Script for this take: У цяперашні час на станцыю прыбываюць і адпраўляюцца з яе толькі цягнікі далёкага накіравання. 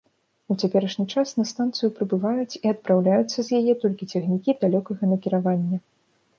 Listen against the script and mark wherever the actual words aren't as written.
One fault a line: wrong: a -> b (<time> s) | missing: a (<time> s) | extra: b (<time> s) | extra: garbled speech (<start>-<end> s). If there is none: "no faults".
no faults